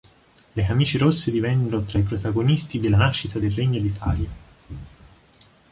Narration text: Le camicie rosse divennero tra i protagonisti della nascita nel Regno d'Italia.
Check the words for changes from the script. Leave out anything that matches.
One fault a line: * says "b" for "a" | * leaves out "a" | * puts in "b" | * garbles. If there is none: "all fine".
* says "del" for "nel"